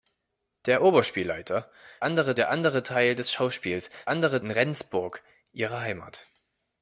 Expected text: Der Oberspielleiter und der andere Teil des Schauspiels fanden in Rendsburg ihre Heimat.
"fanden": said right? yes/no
no